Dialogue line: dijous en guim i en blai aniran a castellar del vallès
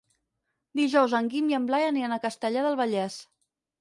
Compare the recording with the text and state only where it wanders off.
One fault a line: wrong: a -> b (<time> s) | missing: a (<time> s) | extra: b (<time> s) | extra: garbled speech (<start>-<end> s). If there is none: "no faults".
no faults